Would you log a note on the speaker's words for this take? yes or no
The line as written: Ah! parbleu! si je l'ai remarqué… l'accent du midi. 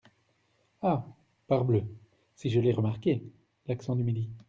no